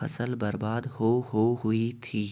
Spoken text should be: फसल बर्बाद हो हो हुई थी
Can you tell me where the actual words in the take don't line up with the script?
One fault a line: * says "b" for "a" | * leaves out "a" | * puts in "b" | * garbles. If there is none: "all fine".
all fine